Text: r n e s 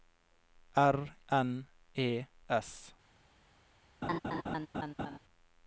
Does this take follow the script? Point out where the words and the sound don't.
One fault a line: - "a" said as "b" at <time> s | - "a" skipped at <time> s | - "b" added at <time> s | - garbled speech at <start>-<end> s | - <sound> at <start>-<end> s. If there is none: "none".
- laugh at 4.0-5.2 s